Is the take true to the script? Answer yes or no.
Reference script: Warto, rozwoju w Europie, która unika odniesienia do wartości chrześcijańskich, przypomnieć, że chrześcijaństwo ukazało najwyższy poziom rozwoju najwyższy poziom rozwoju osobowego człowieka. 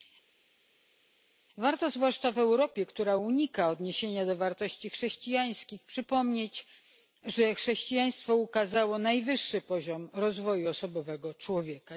no